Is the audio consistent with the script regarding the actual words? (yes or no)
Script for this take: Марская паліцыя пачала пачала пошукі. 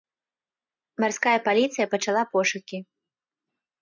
no